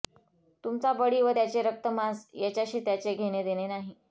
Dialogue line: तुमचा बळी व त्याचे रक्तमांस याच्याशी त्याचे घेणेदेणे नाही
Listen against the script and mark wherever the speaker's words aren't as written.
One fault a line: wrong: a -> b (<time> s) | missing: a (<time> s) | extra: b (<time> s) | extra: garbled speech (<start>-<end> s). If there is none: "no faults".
no faults